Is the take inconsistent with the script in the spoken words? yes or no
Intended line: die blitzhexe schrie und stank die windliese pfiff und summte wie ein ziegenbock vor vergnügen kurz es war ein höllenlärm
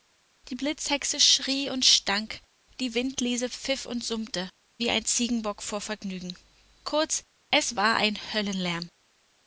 no